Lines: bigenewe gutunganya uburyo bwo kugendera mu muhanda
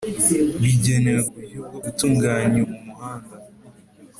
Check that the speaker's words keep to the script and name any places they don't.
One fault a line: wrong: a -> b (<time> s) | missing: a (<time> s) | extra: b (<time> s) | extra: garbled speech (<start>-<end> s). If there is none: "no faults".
missing: gutunganya (1.2 s)
wrong: kugendera -> gutunganya (1.8 s)